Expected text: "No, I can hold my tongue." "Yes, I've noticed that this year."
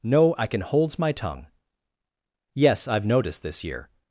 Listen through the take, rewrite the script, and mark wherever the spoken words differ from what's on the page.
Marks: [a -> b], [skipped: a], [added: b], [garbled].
"No, I can [hold -> holds] my tongue." "Yes, I've noticed [skipped: that] this year."